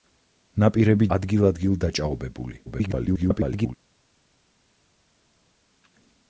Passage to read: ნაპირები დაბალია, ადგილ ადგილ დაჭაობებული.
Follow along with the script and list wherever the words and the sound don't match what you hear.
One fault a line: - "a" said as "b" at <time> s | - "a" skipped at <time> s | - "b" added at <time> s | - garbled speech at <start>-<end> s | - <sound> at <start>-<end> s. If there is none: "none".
- "დაბალია" skipped at 1.1 s
- garbled speech at 2.7-3.8 s